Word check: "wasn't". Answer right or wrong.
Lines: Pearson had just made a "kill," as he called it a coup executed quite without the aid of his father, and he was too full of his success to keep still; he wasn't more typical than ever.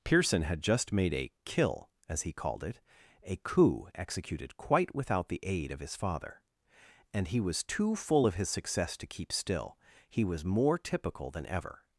wrong